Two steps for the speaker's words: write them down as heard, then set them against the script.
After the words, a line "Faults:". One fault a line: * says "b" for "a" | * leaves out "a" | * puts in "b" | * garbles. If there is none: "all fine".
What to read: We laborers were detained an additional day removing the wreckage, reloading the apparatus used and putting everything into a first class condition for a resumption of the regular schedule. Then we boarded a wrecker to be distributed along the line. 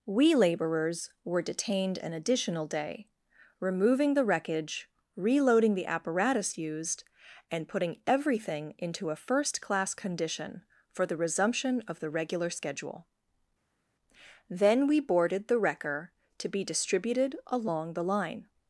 We laborers were detained an additional day removing the wreckage, reloading the apparatus used and putting everything into a first class condition for the resumption of the regular schedule. Then we boarded the wrecker to be distributed along the line.
Faults:
* says "the" for "a"
* says "the" for "a"